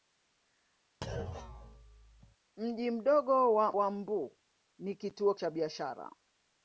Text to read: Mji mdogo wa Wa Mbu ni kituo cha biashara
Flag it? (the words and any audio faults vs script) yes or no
yes